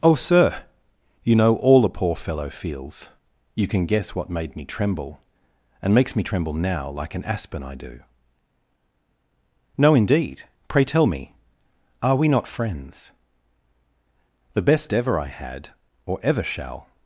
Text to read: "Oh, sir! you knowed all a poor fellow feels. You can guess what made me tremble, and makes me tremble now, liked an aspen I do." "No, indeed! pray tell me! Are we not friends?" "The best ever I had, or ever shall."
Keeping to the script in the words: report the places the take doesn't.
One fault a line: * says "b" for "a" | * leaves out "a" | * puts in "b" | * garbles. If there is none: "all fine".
* says "know" for "knowed"
* says "like" for "liked"